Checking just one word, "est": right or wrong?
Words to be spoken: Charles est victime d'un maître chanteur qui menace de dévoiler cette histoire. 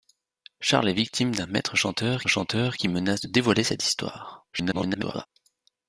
right